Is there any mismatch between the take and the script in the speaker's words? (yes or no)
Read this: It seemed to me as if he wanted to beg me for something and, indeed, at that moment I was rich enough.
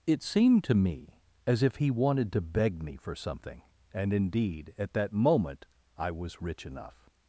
no